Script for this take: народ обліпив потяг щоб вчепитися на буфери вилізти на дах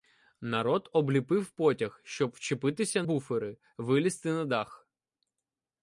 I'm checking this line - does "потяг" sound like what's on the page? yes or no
yes